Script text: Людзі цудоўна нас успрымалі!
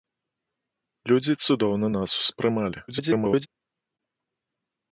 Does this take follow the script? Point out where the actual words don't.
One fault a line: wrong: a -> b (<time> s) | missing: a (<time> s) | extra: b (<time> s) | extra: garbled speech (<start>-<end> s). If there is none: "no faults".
extra: garbled speech (2.9-3.5 s)